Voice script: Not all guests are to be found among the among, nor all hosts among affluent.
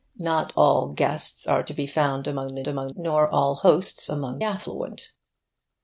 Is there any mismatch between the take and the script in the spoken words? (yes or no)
no